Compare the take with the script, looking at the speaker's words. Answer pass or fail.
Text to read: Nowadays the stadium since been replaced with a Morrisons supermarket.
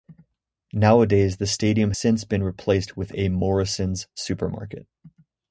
pass